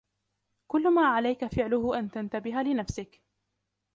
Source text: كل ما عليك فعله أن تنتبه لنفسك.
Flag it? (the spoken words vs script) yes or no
no